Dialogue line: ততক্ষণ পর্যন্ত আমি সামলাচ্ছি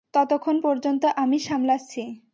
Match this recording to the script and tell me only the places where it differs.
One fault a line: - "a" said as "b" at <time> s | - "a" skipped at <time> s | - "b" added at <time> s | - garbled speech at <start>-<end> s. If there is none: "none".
none